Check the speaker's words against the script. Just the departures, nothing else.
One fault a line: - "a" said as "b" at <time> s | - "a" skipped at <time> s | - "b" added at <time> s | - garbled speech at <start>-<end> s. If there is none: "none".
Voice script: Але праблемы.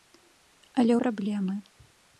none